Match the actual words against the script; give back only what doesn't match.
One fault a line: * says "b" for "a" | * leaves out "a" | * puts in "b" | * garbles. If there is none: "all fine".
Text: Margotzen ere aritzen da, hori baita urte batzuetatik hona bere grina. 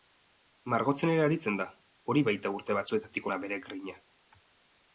all fine